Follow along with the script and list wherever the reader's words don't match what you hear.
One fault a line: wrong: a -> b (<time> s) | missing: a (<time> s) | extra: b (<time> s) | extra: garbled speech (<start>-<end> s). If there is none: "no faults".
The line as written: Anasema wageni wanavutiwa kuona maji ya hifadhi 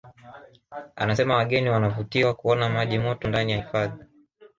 extra: moto ndani (3.0 s)